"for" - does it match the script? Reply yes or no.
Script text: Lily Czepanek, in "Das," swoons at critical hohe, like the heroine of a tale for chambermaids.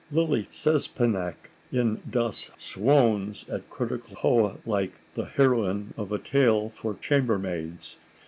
yes